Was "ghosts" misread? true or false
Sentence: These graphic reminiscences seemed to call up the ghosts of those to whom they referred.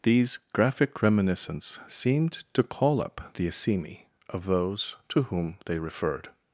true